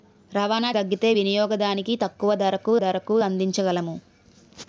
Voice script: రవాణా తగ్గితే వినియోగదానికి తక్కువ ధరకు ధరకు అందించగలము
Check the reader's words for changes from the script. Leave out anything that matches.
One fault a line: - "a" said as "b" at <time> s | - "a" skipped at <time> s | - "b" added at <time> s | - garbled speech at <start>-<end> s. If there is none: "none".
none